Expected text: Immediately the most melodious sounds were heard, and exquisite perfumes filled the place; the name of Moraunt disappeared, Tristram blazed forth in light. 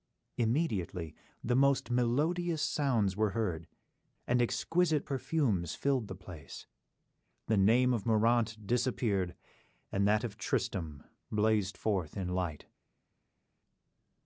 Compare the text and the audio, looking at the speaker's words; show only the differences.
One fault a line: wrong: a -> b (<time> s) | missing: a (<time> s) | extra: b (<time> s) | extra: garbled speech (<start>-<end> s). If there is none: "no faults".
extra: and that of (9.9 s)